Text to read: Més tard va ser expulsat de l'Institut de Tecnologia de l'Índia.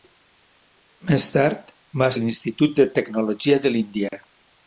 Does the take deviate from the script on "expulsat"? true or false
true